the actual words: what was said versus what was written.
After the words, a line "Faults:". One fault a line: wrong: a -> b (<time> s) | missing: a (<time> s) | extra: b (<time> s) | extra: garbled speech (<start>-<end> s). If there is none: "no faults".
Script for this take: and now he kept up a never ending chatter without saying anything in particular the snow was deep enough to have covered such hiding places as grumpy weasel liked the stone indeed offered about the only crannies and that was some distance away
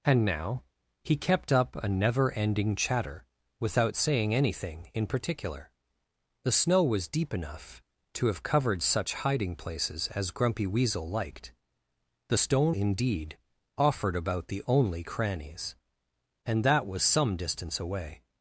and now he kept up a never ending chatter without saying anything in particular the snow was deep enough to have covered such hiding places as grumpy weasel liked the stone indeed offered about the only crannies and that was some distance away
Faults:
no faults